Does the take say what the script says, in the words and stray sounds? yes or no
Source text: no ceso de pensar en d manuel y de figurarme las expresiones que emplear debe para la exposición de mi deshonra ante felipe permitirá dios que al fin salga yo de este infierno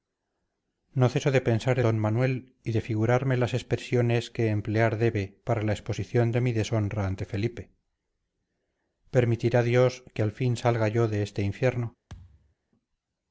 no